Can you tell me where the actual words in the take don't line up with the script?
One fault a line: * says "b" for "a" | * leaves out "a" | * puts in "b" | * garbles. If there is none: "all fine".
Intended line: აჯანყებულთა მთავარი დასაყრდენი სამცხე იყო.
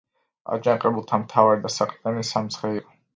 all fine